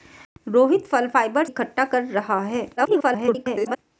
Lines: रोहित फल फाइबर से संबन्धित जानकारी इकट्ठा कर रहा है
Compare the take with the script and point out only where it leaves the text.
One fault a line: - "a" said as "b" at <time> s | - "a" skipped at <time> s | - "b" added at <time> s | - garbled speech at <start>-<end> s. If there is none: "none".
- "से संबन्धित जानकारी" skipped at 1.4 s
- garbled speech at 2.8-3.8 s